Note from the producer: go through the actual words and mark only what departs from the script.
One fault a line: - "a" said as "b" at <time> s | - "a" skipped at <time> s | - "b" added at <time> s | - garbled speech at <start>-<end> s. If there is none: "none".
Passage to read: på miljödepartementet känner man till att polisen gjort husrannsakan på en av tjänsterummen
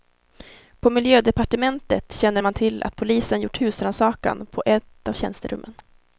- "en" said as "ett" at 4.7 s